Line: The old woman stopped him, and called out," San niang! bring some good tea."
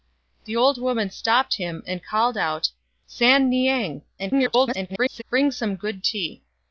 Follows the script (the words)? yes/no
no